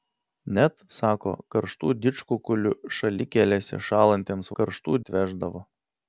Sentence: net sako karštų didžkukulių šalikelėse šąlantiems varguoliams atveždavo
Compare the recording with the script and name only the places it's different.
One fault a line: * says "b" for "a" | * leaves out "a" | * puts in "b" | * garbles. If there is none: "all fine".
* says "karštų" for "varguoliams"